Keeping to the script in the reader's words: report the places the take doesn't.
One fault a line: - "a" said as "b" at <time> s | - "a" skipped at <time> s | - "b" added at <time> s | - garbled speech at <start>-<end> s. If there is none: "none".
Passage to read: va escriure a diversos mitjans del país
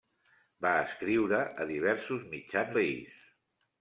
- "del" skipped at 2.8 s